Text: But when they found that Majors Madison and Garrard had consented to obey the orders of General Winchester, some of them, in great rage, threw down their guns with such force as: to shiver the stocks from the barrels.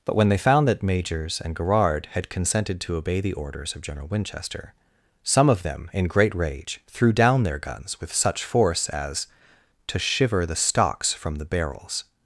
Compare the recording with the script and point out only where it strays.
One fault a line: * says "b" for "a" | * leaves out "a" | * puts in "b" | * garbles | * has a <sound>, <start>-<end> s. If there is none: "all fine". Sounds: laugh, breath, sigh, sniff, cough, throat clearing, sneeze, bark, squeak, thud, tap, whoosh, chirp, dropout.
* leaves out "Madison"